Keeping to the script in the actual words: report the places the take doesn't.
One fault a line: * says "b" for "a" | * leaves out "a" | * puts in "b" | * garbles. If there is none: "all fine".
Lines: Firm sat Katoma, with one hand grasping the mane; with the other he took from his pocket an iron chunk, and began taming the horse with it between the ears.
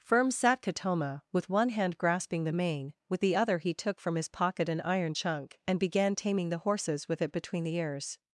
* says "horses" for "horse"